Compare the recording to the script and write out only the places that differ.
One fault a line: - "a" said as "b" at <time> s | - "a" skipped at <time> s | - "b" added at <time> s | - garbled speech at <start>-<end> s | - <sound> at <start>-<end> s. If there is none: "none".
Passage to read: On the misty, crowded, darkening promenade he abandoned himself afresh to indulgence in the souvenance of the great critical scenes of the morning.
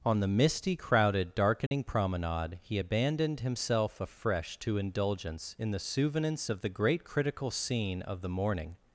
- dropout at 1.7-1.7 s
- "scenes" said as "scene" at 7.5 s